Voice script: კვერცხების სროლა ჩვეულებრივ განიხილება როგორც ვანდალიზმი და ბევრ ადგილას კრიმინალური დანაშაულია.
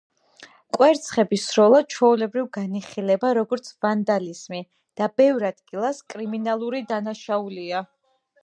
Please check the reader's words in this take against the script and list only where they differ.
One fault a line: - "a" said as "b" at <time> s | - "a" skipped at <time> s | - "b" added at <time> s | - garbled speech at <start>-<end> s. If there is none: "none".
none